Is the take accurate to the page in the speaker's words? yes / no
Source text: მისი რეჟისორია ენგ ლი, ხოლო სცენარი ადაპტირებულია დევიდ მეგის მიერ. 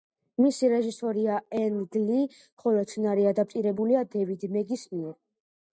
yes